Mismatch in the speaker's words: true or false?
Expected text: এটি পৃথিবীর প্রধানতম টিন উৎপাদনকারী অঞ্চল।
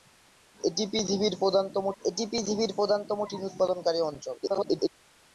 true